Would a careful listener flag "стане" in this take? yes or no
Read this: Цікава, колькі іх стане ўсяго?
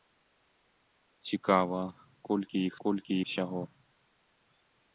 yes